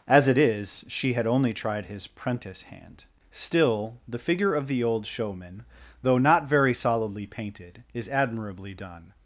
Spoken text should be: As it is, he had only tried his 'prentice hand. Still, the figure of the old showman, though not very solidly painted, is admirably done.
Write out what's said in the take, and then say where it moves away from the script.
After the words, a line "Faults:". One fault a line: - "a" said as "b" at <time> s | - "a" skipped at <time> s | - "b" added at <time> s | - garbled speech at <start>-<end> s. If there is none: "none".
As it is, she had only tried his 'prentice hand. Still, the figure of the old showman, though not very solidly painted, is admirably done.
Faults:
- "he" said as "she" at 0.9 s